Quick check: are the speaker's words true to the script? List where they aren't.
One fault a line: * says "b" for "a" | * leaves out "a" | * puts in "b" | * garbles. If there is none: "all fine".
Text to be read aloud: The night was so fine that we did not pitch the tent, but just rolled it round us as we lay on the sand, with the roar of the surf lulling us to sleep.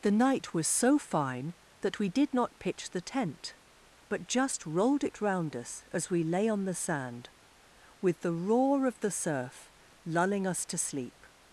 all fine